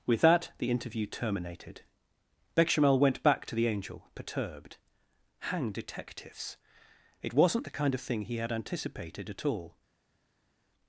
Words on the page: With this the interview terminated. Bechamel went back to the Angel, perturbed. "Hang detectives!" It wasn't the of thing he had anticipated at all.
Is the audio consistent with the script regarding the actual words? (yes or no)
no